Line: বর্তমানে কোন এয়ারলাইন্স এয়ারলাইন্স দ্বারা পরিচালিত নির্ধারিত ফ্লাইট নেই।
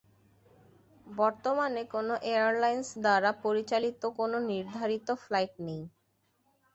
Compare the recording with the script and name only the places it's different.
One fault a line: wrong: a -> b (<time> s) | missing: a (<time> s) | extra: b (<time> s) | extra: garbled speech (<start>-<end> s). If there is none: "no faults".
missing: এয়ারলাইন্স (2.9 s)
extra: কোন (4.2 s)